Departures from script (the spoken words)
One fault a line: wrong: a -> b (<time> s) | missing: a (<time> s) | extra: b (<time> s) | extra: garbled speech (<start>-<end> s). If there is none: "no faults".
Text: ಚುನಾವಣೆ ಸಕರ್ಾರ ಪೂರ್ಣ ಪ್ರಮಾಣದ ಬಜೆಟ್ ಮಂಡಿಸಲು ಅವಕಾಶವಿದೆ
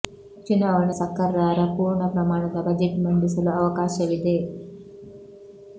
no faults